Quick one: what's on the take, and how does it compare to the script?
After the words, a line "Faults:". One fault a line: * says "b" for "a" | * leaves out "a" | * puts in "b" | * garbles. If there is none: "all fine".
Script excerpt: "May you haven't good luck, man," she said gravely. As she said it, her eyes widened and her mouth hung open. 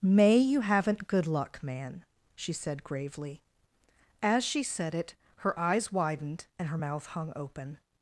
"May you haven't good luck, man," she said gravely. As she said it, her eyes widened and her mouth hung open.
Faults:
all fine